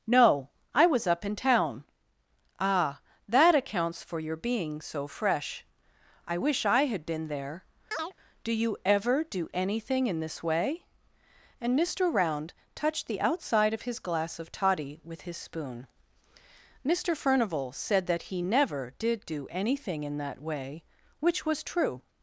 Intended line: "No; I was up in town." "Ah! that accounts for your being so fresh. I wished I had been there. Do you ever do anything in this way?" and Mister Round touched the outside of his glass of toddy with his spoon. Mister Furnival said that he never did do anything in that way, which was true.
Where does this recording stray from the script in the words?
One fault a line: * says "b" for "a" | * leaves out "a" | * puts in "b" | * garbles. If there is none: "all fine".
* says "wish" for "wished"